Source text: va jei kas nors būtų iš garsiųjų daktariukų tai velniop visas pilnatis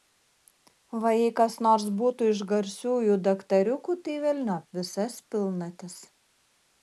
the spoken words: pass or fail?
pass